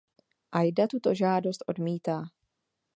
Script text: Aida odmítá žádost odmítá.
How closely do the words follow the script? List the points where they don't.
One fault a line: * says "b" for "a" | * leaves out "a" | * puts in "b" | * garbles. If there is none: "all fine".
* says "tuto" for "odmítá"